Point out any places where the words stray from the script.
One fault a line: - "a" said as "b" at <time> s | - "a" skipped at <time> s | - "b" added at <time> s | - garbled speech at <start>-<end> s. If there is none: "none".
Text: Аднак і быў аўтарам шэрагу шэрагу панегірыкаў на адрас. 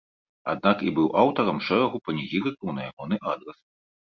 - "шэрагу" skipped at 2.0 s
- "ягоны" added at 2.9 s